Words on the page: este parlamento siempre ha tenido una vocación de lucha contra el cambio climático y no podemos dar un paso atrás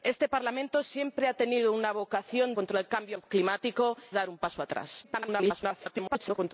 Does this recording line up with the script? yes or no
no